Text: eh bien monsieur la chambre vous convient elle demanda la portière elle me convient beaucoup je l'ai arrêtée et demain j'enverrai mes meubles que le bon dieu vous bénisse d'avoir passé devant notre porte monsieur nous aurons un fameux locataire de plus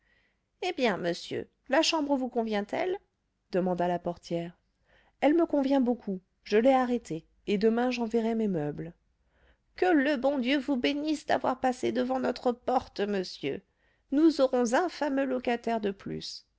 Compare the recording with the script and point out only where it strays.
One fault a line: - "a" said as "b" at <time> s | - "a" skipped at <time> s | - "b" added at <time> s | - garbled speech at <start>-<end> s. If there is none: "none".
none